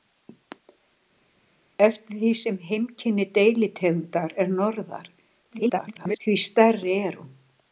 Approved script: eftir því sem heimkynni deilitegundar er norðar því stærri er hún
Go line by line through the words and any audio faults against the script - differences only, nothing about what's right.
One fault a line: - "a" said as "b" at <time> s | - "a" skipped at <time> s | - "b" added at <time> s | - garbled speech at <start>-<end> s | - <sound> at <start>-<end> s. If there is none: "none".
- garbled speech at 5.5-6.2 s